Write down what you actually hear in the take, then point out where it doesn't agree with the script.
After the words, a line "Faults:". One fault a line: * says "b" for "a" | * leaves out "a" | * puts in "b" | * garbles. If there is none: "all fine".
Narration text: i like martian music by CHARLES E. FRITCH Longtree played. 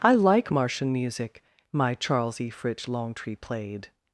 i like martian music my CHARLES E. FRITCH Longtree played.
Faults:
* says "my" for "by"